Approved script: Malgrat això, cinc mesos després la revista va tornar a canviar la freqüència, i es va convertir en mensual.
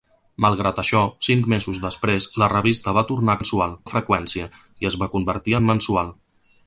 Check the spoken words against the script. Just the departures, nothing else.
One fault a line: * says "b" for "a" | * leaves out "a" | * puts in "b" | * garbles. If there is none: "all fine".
* says "mensual" for "canviar"